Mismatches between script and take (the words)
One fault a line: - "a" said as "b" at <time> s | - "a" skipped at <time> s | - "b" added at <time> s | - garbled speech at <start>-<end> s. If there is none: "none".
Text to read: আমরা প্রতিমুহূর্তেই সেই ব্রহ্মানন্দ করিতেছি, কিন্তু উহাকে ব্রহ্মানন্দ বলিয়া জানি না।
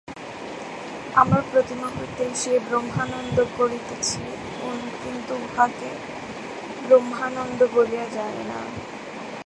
none